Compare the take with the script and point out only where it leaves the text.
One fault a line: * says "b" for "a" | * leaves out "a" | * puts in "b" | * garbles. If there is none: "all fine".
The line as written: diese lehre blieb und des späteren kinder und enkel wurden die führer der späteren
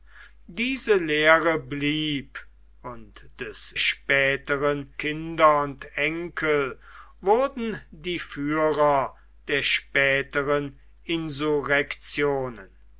all fine